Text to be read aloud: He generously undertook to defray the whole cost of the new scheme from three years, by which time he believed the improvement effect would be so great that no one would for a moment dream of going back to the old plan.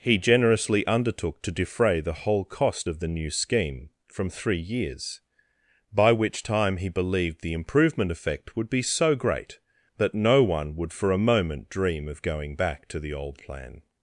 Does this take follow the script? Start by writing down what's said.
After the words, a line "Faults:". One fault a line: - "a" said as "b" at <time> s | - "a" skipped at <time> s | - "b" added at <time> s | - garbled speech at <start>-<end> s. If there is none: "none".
He generously undertook to defray the whole cost of the new scheme from three years, by which time he believed the improvement effect would be so great that no one would for a moment dream of going back to the old plan.
Faults:
none